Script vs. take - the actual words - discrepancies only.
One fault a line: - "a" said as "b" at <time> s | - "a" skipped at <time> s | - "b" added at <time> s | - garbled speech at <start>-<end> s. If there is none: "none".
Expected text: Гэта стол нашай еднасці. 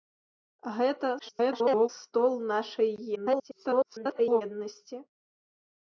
- garbled speech at 1.2-1.9 s
- garbled speech at 3.1-4.4 s